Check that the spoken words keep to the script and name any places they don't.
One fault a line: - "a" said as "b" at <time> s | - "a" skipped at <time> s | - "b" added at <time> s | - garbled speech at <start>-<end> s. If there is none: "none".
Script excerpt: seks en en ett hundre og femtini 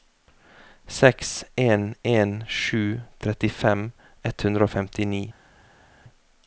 - "sju trettifem" added at 2.5 s